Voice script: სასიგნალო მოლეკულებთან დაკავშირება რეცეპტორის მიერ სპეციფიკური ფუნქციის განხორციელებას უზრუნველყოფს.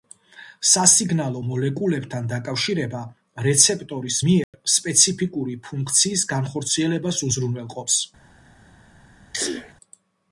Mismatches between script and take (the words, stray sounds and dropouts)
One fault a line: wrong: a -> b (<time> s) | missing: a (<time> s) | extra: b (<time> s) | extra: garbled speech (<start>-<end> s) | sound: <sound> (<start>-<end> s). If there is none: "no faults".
sound: dropout (4.4-4.5 s)
sound: sneeze (9.3-9.7 s)